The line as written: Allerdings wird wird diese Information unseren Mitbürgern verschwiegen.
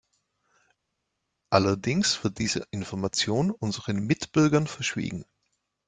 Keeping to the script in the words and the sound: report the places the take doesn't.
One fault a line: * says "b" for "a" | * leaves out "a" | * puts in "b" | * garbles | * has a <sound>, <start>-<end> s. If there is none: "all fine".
* leaves out "wird"